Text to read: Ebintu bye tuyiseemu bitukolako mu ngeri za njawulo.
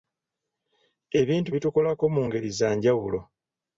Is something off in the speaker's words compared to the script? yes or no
yes